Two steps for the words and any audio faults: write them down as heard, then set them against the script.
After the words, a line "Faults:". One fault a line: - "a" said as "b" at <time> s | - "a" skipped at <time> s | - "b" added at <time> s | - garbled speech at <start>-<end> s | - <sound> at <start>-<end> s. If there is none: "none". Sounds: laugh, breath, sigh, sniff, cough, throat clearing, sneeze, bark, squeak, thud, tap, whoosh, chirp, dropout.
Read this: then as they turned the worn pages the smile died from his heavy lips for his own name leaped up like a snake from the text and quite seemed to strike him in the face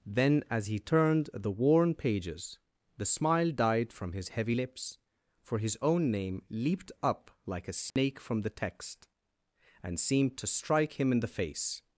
then as he turned the worn pages the smile died from his heavy lips for his own name leaped up like a snake from the text and seemed to strike him in the face
Faults:
- "they" said as "he" at 0.7 s
- dropout at 7.9-8.0 s
- "quite" skipped at 10.0 s